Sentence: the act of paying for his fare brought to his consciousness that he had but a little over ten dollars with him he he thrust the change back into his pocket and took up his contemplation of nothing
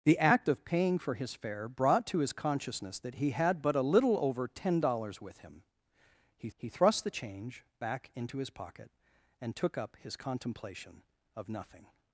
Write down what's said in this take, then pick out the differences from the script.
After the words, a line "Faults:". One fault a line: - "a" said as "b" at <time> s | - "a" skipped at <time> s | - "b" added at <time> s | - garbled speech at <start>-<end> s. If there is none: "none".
the act of paying for his fare brought to his consciousness that he had but a little over ten dollars with him he he thrust the change back into his pocket and took up his contemplation of nothing
Faults:
none